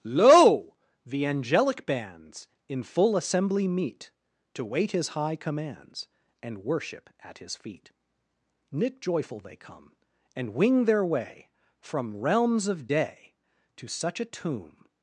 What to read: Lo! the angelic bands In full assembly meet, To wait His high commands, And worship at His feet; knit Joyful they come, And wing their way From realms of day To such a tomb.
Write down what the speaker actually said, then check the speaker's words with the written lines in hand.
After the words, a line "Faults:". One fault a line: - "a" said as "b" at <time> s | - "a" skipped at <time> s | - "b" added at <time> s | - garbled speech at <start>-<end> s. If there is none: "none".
Lo! the angelic bands In full assembly meet, To wait His high commands, And worship at His feet; knit Joyful they come, And wing their way From realms of day To such a tomb.
Faults:
none